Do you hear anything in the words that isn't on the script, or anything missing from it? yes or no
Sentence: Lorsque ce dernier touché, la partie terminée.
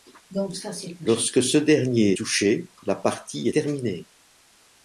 no